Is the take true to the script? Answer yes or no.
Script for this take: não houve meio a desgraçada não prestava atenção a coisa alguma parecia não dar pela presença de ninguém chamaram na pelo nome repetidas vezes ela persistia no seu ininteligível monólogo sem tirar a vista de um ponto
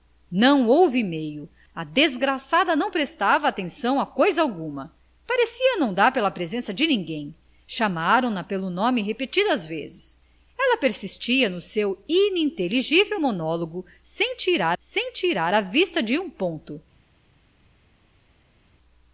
no